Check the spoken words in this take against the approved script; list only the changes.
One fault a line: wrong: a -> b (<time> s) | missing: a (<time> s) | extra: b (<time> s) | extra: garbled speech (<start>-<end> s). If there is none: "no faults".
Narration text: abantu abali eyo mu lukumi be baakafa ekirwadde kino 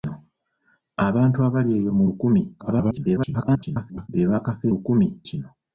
extra: garbled speech (2.6-4.1 s)
wrong: ekirwadde -> lukumi (4.7 s)